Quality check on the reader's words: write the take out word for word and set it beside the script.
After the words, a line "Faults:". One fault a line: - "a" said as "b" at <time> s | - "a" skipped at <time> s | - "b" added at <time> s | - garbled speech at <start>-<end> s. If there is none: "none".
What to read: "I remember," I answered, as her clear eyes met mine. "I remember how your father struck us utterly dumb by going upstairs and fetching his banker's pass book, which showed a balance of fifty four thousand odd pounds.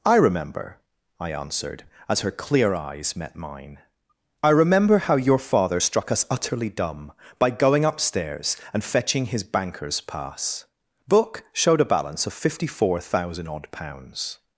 "I remember," I answered, as her clear eyes met mine. "I remember how your father struck us utterly dumb by going upstairs and fetching his banker's pass book, showed a balance of fifty four thousand odd pounds.
Faults:
- "which" skipped at 11.4 s